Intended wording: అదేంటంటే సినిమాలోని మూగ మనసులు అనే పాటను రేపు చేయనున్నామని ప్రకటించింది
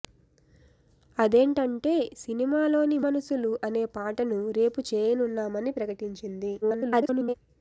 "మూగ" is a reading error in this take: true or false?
true